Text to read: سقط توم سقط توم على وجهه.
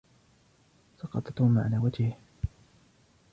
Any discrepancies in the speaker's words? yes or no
yes